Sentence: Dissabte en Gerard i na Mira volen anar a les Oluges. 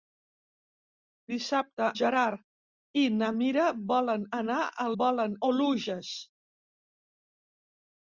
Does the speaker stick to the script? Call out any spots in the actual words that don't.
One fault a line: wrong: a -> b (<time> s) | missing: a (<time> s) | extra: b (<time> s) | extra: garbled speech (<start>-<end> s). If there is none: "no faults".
missing: en (1.9 s)
wrong: les -> volen (5.0 s)